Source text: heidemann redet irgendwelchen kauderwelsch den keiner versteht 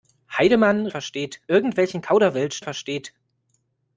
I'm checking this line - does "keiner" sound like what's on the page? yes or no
no